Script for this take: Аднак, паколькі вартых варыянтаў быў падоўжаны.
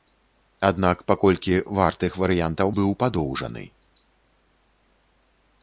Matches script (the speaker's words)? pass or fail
pass